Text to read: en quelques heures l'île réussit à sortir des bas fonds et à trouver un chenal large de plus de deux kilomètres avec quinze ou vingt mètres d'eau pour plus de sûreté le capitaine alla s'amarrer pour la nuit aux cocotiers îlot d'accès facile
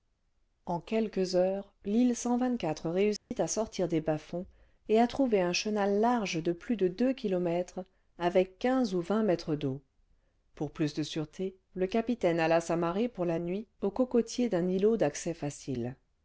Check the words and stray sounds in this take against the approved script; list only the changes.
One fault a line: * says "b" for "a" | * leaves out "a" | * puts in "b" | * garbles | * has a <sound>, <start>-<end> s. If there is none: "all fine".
* has a dropout, 3.2-3.3 s
* puts in "d'un"